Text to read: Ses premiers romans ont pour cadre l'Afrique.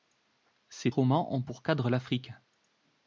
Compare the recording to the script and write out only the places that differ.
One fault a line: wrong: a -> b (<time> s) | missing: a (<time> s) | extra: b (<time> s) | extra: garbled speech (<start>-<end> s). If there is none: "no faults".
missing: premiers (0.9 s)